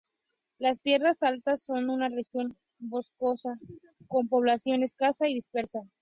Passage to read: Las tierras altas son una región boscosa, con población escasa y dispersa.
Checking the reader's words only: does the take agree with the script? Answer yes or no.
yes